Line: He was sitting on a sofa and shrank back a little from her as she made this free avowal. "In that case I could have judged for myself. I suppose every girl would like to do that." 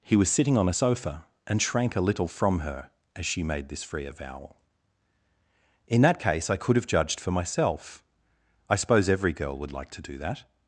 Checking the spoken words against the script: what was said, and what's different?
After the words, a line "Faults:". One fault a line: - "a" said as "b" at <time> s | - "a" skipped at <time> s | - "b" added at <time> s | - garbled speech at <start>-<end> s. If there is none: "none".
He was sitting on a sofa and shrank a little from her as she made this free avowal. "In that case I could have judged for myself. I suppose every girl would like to do that."
Faults:
- "back" skipped at 1.9 s